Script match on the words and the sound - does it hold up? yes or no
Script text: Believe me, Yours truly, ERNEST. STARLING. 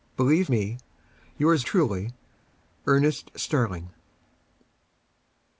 yes